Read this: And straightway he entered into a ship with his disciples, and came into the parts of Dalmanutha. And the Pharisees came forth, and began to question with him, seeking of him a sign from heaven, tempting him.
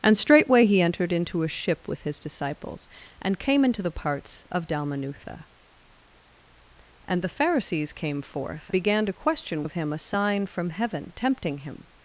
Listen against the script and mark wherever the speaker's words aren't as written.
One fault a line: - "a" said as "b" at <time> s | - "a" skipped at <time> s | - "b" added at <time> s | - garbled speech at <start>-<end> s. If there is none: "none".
- "and" skipped at 8.7 s
- "with him seeking" skipped at 9.6 s